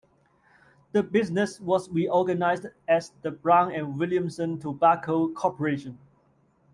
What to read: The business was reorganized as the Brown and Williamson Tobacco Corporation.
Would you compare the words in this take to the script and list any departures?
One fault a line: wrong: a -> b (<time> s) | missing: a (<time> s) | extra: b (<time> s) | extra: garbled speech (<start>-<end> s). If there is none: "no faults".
no faults